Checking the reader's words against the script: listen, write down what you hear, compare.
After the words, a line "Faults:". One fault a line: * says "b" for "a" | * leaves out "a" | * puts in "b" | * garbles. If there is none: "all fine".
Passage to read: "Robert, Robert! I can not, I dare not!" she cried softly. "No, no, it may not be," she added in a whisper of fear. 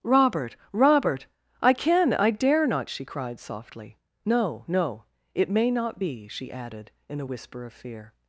"Robert, Robert! I can I dare not!" she cried softly. "No, no, it may not be," she added in a whisper of fear.
Faults:
* leaves out "not"